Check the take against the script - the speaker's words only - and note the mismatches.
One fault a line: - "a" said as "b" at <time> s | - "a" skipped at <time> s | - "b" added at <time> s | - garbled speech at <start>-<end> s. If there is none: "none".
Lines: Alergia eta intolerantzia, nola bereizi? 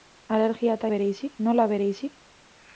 - "intolerantzia" said as "bereizi" at 0.9 s